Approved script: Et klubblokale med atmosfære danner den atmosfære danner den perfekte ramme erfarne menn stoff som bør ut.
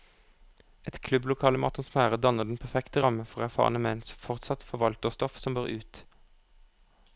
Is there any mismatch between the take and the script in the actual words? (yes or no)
yes